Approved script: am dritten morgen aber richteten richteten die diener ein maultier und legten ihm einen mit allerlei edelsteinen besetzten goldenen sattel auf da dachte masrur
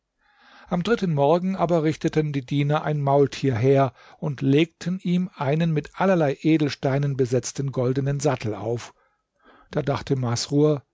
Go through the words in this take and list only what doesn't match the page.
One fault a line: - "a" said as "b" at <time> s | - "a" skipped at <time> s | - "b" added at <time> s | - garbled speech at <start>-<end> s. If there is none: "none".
- "richteten" skipped at 2.3 s
- "her" added at 3.5 s